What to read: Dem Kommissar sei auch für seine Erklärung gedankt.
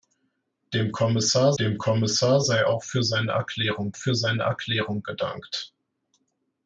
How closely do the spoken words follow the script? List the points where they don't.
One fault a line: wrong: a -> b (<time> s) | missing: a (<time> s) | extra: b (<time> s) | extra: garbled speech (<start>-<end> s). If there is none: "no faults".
extra: dem Kommissar (1.6 s)
extra: für seine Erklärung (3.9 s)